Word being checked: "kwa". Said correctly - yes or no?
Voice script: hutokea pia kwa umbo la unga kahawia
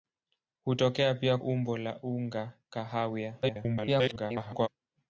no